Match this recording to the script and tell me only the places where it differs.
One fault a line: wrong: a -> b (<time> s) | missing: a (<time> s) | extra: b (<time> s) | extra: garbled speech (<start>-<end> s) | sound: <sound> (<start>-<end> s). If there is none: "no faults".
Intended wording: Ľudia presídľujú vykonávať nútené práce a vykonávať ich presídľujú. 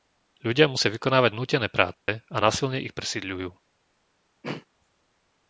wrong: presídľujú -> musia (0.7 s)
sound: dropout (1.9-2.1 s)
wrong: vykonávať -> násilne (2.4 s)
sound: throat clearing (4.4-4.7 s)